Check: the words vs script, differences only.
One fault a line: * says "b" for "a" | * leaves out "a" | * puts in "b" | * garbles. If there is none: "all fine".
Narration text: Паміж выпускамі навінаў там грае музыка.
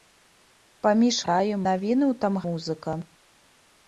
* says "грае" for "выпускамі"
* leaves out "грае"